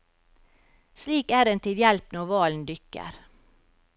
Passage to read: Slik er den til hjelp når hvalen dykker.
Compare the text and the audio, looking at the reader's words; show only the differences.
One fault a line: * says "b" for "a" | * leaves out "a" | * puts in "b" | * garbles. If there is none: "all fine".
all fine